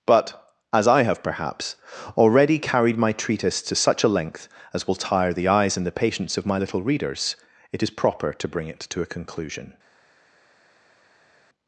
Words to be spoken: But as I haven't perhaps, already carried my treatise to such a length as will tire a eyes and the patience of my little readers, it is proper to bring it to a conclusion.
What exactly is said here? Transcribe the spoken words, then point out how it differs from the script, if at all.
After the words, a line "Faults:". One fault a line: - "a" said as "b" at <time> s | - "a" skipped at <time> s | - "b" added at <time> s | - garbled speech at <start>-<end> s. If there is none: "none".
But as I have perhaps, already carried my treatise to such a length as will tire the eyes and the patience of my little readers, it is proper to bring it to a conclusion.
Faults:
- "haven't" said as "have" at 1.0 s
- "a" said as "the" at 5.3 s